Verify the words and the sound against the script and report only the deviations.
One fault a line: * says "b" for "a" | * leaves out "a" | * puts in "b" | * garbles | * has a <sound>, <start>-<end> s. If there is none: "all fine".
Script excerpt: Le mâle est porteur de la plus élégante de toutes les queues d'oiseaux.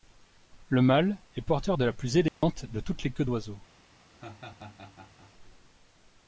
* has a dropout, 2.3-2.4 s
* has a laugh, 4.1-5.3 s